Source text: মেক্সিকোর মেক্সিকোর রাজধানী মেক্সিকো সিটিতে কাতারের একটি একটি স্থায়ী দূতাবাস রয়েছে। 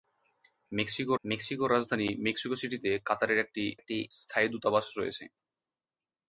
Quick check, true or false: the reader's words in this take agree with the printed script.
true